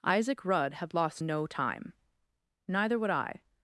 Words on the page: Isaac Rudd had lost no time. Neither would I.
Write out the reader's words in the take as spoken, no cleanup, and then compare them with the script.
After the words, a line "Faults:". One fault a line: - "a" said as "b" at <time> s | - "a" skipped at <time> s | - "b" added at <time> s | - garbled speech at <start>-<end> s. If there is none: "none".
Isaac Rudd had lost no time. Neither would I.
Faults:
none